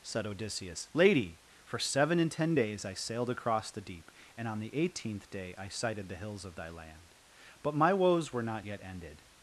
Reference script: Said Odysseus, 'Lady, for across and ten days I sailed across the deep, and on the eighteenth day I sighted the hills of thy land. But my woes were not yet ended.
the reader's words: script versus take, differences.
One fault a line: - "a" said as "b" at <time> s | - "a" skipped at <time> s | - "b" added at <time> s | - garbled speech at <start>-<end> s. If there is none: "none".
- "across" said as "seven" at 1.8 s